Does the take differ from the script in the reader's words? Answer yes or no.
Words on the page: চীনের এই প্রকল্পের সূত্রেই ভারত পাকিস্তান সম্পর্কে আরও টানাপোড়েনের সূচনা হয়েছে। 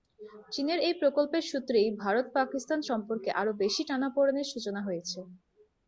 yes